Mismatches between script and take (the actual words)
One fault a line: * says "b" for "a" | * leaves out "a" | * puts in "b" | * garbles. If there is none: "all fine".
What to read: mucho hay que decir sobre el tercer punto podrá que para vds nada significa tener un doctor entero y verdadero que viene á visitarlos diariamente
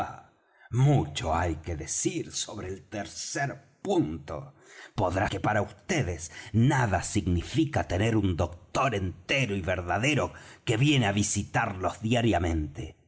all fine